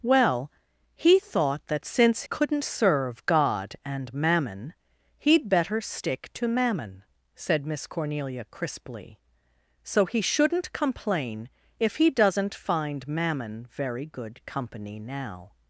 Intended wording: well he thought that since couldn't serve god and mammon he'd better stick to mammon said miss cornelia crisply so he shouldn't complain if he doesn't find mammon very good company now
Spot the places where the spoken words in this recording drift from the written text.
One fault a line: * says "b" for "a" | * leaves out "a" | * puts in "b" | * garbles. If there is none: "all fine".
all fine